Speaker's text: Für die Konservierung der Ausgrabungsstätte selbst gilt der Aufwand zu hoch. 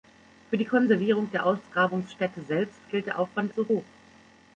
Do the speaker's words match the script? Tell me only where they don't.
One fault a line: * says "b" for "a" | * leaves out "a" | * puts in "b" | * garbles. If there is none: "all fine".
all fine